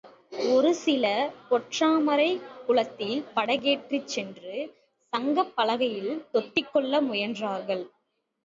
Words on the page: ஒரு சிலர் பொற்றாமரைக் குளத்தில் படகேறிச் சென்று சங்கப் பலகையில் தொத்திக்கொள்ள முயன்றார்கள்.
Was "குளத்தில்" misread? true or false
false